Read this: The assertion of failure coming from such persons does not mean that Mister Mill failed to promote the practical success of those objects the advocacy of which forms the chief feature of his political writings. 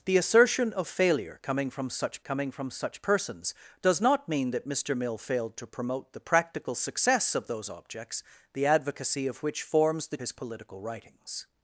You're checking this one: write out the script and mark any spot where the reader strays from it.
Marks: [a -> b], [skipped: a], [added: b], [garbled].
The assertion of failure coming from such [added: coming from such] persons does not mean that Mister Mill failed to promote the practical success of those objects the advocacy of which forms the [skipped: chief feature of] his political writings.